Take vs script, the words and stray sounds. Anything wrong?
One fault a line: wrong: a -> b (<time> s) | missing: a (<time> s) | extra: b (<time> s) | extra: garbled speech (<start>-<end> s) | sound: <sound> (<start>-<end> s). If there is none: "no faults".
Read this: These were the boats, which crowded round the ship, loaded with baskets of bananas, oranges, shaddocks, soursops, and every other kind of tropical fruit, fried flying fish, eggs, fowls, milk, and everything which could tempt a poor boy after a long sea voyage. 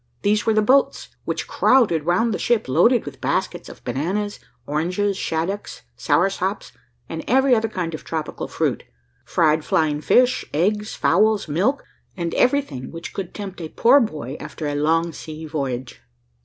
no faults